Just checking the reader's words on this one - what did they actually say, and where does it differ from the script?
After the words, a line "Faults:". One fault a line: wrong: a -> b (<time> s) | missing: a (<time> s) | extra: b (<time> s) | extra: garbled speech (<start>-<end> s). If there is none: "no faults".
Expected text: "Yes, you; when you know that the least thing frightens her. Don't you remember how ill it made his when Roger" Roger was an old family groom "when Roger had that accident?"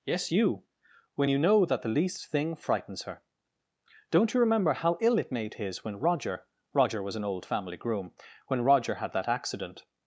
"Yes, you; when you know that the least thing frightens her. Don't you remember how ill it made his when Roger" Roger was an old family groom "when Roger had that accident?"
Faults:
no faults